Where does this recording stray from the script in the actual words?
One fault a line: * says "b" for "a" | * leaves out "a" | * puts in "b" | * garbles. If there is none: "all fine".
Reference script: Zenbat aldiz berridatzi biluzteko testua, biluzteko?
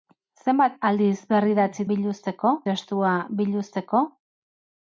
all fine